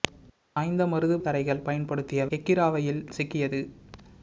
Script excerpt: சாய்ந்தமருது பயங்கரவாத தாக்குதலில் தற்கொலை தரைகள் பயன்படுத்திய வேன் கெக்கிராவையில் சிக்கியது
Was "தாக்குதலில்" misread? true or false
true